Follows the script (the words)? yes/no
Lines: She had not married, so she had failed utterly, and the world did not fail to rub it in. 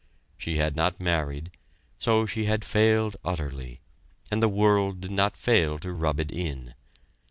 yes